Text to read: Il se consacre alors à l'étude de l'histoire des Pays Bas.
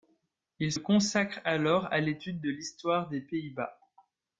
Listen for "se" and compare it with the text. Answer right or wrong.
wrong